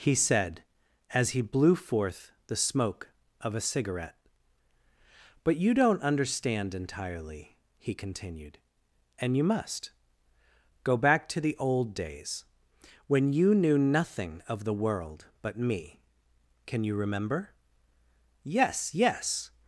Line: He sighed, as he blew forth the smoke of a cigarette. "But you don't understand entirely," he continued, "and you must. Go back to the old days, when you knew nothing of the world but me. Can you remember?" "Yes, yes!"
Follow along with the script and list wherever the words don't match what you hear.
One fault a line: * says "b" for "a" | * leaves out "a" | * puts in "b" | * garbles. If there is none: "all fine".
* says "said" for "sighed"